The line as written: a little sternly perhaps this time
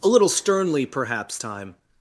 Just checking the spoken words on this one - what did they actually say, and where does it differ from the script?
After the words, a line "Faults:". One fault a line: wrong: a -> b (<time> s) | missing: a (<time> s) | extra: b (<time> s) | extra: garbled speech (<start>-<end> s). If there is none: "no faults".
a little sternly perhaps time
Faults:
missing: this (1.4 s)